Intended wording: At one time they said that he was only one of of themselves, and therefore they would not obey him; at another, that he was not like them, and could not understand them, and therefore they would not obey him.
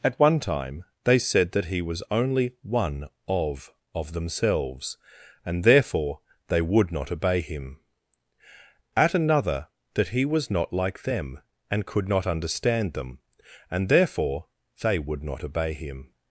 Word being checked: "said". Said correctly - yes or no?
yes